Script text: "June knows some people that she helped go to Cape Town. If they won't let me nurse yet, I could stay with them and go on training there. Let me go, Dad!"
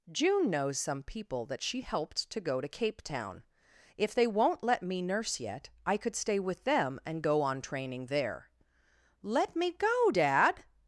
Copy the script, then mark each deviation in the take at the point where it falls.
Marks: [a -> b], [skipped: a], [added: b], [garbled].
"June knows some people that she helped [added: to] go to Cape Town. If they won't let me nurse yet, I could stay with them and go on training there. Let me go, Dad!"